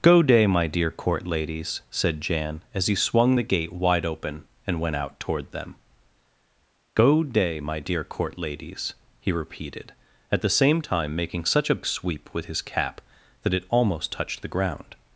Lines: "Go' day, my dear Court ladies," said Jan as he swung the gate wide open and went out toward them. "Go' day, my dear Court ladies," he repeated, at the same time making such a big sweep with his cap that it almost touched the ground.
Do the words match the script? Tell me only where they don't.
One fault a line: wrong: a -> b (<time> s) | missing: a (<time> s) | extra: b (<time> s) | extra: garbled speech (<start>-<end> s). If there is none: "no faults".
missing: big (11.8 s)